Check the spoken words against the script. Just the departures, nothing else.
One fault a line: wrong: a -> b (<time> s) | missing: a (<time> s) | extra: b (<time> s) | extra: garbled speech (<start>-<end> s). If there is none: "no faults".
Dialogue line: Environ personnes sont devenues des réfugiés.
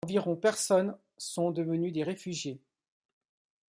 no faults